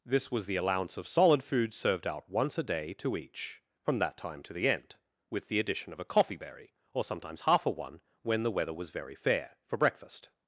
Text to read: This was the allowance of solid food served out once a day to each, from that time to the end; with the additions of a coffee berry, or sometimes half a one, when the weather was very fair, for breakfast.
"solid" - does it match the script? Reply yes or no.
yes